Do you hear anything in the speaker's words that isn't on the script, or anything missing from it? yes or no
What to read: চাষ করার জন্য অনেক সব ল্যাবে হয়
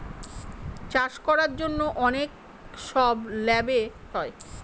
no